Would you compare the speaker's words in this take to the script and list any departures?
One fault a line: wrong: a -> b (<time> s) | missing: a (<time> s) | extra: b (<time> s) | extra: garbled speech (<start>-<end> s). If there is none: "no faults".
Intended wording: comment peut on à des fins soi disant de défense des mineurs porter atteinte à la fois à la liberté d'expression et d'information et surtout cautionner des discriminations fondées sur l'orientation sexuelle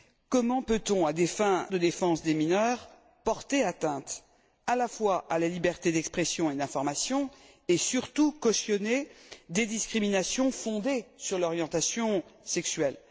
missing: soi disant (1.7 s)